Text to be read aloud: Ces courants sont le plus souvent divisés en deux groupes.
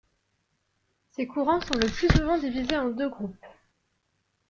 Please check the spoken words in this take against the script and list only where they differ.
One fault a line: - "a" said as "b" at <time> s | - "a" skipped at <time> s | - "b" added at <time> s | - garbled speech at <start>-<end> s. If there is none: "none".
none